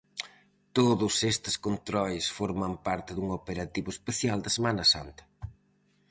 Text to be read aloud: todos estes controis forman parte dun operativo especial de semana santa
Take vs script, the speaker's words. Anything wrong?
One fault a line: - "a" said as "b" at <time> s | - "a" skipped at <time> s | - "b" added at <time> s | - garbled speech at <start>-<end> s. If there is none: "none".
none